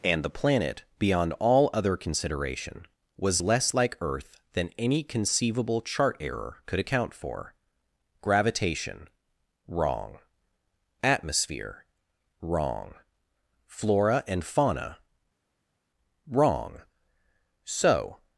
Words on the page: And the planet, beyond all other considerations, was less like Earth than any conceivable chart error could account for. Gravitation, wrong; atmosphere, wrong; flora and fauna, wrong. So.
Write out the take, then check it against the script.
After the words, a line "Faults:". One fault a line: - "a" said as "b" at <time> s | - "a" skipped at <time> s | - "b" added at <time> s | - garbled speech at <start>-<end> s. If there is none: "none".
And the planet, beyond all other consideration, was less like Earth than any conceivable chart error could account for. Gravitation, wrong; atmosphere, wrong; flora and fauna, wrong. So.
Faults:
- "considerations" said as "consideration" at 1.9 s